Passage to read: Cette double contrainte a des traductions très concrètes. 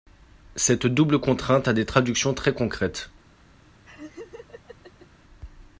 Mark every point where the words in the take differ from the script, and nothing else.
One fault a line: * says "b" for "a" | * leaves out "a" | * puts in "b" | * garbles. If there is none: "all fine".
all fine